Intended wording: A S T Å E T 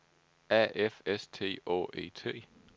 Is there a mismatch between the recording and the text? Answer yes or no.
yes